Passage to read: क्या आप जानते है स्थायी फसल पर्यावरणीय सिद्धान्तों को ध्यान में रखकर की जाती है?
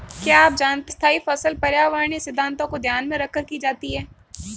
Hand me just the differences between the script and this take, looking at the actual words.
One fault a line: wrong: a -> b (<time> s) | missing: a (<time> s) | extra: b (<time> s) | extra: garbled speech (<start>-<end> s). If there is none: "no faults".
missing: है (0.9 s)